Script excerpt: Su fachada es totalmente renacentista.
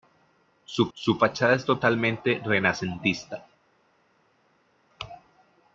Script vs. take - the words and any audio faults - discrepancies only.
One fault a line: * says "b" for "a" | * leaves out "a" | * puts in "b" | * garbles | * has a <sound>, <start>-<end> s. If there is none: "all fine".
* puts in "su"